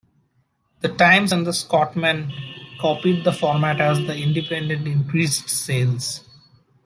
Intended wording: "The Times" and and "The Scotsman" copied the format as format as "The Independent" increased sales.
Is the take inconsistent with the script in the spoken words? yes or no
yes